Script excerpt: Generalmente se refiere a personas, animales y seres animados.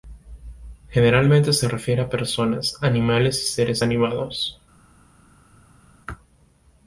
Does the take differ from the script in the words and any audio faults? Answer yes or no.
no